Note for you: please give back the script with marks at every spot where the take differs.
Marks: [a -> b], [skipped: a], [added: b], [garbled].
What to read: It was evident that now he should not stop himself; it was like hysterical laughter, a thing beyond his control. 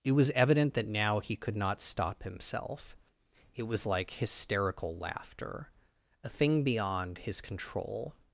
It was evident that now he [should -> could] not stop himself; it was like hysterical laughter, a thing beyond his control.